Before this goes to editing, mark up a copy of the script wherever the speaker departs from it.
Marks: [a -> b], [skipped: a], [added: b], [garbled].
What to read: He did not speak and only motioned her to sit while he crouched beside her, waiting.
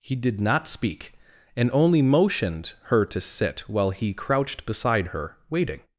He did not speak and only motioned her to sit while he crouched beside her, waiting.